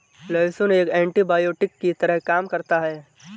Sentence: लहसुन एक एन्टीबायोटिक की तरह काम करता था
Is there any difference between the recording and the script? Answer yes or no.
yes